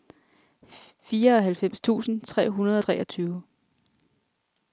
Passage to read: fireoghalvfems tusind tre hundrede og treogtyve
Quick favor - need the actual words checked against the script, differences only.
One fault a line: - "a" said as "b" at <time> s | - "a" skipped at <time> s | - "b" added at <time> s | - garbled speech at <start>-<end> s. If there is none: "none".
none